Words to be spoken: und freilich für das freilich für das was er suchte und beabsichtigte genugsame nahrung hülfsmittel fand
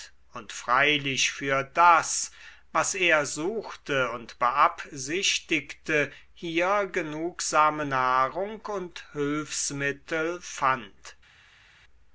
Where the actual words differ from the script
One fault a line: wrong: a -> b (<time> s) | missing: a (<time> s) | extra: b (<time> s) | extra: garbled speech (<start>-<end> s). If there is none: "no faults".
missing: freilich für das (2.3 s)
extra: hier (6.3 s)
extra: und (8.7 s)